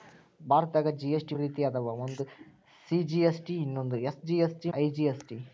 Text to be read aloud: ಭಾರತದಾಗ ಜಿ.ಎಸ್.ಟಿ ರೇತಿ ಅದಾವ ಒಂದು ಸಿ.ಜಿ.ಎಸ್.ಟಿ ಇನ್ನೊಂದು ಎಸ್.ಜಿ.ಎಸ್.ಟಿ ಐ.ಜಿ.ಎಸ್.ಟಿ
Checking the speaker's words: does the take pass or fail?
pass